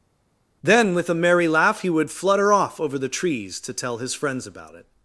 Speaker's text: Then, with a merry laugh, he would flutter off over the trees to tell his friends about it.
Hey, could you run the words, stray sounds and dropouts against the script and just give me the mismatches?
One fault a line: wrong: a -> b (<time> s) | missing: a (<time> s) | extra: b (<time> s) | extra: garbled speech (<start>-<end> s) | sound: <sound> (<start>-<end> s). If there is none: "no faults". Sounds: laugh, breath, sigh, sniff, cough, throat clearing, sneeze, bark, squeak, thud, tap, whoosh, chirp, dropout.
no faults